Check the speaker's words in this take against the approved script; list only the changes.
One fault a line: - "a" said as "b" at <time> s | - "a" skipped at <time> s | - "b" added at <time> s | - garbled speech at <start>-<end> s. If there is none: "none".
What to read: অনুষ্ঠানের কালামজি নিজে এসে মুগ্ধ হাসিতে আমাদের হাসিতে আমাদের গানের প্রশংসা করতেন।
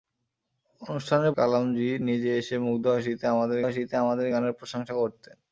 none